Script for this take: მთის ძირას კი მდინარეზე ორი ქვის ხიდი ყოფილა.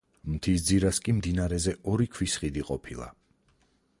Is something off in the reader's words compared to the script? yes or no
no